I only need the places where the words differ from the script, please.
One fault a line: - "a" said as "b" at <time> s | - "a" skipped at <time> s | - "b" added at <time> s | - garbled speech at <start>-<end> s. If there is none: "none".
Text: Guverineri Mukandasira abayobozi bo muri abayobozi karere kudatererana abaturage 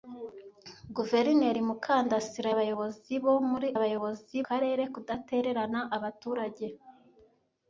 none